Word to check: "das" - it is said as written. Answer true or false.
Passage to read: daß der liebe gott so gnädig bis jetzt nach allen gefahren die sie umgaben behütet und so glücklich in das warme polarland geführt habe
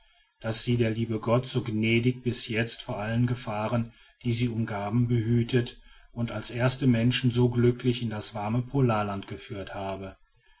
true